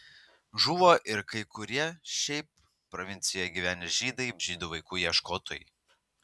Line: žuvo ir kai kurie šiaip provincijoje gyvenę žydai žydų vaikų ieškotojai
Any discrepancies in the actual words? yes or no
no